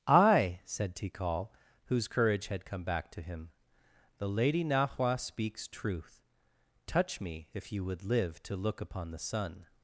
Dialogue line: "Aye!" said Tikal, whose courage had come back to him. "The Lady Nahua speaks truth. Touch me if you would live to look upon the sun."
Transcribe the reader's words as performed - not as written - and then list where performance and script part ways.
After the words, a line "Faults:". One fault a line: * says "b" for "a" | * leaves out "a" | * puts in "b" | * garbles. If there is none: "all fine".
"Aye!" said Tikal, whose courage had come back to him. "The Lady Nahua speaks truth. Touch me if you would live to look upon the sun."
Faults:
all fine